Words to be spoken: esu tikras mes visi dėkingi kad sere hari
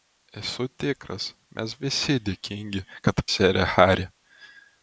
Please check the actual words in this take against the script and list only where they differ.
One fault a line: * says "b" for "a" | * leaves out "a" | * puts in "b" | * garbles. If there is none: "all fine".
all fine